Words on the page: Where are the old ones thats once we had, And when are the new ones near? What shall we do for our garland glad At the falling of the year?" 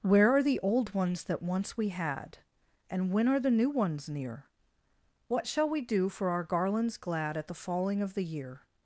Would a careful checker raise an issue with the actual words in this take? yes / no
yes